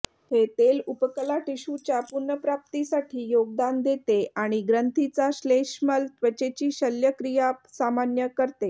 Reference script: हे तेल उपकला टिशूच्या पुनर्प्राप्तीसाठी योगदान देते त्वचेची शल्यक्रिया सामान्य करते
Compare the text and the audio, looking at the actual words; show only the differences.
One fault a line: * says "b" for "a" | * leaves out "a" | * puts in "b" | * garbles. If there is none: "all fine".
* puts in "आणि ग्रंथीचा श्लेष्मल"